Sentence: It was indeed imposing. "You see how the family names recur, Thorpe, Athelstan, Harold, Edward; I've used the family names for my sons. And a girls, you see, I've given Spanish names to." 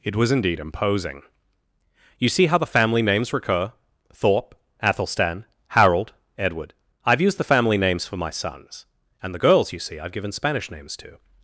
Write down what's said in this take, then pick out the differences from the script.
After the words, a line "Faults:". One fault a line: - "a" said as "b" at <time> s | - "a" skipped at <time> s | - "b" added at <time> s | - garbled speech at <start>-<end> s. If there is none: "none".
It was indeed imposing. "You see how the family names recur, Thorpe, Athelstan, Harold, Edward; I've used the family names for my sons. And the girls, you see, I've given Spanish names to."
Faults:
- "a" said as "the" at 9.3 s